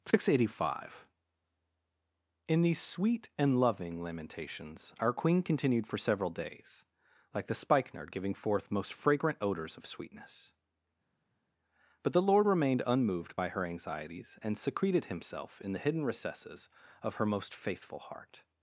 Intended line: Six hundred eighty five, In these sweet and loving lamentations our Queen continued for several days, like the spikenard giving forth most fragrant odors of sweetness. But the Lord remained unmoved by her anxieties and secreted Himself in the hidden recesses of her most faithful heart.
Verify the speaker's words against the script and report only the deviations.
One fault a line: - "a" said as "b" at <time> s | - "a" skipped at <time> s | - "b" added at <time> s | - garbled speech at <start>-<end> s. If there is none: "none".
none